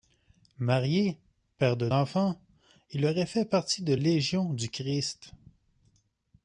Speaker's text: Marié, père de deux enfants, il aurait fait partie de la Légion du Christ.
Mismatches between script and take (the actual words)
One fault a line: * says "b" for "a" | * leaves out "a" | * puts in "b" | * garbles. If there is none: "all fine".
* leaves out "deux"
* leaves out "la"